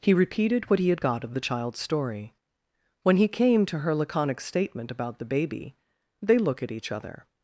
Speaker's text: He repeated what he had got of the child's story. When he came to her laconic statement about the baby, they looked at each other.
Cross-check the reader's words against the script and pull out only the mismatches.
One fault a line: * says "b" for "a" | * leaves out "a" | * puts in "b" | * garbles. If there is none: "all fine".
* says "look" for "looked"